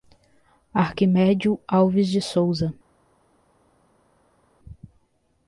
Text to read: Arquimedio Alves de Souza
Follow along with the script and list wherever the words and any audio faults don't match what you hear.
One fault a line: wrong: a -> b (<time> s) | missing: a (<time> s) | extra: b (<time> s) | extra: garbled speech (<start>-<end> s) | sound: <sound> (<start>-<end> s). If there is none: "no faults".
no faults